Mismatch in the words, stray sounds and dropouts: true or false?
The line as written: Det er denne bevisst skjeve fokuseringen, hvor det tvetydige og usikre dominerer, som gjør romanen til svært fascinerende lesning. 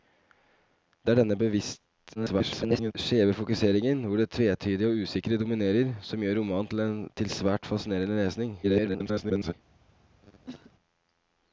true